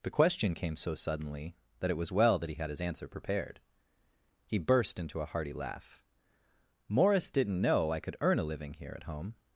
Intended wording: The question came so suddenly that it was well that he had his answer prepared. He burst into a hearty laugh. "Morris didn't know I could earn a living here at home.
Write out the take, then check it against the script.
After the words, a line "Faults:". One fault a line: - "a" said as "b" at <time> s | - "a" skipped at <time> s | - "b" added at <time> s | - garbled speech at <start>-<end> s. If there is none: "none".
The question came so suddenly that it was well that he had his answer prepared. He burst into a hearty laugh. "Morris didn't know I could earn a living here at home.
Faults:
none